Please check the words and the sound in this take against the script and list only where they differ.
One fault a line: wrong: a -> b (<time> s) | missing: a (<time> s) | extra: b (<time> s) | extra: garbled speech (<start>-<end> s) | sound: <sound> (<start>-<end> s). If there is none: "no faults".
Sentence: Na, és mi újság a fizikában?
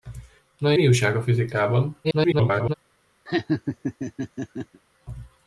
missing: és (0.7 s)
extra: garbled speech (2.0-2.7 s)
sound: laugh (3.3-4.8 s)